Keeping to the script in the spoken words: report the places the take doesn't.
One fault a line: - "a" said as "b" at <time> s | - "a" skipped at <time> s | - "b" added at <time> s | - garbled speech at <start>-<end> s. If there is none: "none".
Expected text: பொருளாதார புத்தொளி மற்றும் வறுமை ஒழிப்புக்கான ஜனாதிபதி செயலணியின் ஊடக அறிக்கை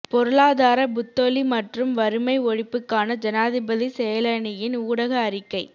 none